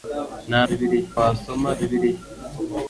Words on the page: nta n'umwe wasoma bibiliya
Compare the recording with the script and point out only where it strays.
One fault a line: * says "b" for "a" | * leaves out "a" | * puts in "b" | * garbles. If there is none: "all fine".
* says "bibiliya" for "n'umwe"